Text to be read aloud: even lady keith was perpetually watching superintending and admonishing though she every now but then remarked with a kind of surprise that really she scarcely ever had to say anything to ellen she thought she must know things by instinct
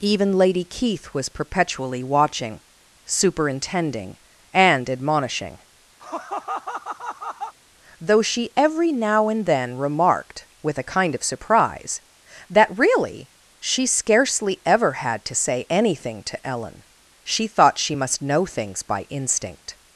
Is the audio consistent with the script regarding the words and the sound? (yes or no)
no